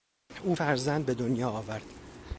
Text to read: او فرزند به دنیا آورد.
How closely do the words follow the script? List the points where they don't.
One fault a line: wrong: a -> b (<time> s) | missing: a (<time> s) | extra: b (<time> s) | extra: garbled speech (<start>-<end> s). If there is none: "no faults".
no faults